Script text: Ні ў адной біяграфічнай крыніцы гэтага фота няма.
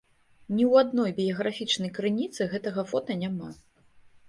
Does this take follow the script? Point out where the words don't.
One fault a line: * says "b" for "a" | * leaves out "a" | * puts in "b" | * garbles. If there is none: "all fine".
all fine